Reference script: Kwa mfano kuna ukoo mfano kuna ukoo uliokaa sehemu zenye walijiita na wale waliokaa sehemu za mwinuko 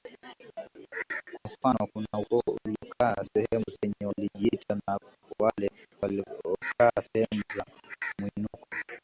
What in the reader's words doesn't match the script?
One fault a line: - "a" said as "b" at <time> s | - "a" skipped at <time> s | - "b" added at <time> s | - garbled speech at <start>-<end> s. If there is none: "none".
- "mfano kuna ukoo" skipped at 2.6 s